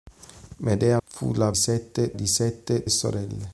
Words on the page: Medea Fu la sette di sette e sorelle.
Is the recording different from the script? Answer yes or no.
no